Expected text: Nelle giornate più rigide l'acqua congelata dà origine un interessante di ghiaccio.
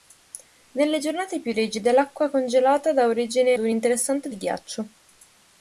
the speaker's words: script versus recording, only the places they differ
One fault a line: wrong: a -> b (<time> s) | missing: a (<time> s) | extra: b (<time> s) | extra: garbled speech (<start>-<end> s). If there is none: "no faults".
no faults